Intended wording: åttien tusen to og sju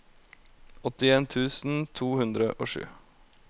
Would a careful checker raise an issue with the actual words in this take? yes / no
yes